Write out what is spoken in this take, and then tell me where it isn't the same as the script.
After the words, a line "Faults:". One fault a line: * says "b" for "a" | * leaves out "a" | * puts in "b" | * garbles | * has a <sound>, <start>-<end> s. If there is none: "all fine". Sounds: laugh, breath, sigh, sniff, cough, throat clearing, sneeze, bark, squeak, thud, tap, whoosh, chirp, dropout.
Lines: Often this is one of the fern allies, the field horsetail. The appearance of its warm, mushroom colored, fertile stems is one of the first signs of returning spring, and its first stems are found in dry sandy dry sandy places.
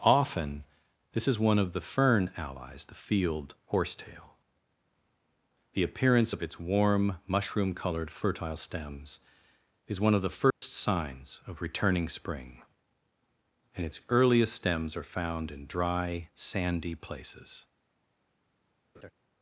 Often this is one of the fern allies, the field horsetail. The appearance of its warm, mushroom colored, fertile stems is one of the first signs of returning spring, and its earliest stems are found in dry sandy places.
Faults:
* has a dropout, 10.5-10.6 s
* says "earliest" for "first"
* leaves out "dry sandy"
* has a laugh, 18.9-19.1 s